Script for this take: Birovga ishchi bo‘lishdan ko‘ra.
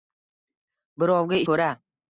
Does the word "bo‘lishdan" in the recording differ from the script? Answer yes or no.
yes